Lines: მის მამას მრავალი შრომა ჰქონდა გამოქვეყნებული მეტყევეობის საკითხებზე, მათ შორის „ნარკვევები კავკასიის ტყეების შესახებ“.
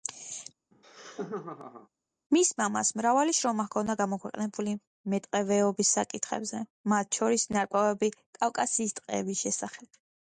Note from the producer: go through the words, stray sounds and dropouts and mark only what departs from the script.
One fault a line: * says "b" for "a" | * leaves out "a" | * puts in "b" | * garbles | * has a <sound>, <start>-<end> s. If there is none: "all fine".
* has a laugh, 0.7-1.9 s